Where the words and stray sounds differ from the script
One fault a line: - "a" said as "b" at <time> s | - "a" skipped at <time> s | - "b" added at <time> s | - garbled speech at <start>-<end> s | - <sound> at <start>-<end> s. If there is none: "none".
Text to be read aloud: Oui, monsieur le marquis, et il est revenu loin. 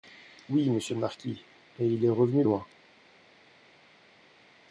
none